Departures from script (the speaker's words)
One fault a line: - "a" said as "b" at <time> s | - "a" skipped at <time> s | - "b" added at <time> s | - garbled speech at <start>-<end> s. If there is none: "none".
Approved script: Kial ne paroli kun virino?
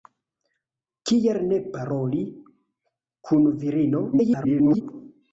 - garbled speech at 4.1-4.8 s